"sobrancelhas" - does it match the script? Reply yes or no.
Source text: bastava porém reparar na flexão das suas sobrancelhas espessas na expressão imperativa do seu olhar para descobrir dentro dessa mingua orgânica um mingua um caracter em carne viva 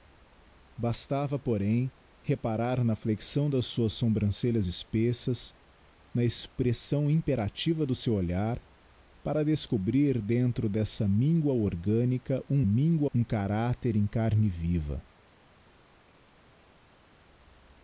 yes